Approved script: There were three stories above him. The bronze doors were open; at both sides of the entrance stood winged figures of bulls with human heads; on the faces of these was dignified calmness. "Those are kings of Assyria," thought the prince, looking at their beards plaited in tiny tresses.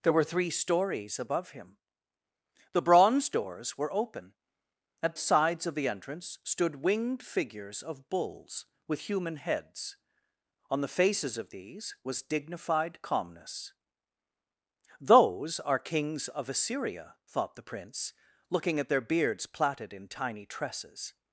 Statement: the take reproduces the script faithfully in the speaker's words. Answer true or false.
false